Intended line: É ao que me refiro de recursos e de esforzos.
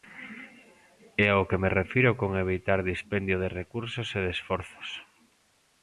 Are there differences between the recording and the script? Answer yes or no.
yes